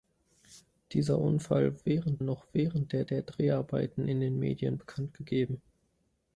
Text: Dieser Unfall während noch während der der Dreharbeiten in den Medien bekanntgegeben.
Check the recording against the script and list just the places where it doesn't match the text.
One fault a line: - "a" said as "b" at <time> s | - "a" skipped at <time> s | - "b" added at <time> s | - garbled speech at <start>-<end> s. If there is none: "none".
none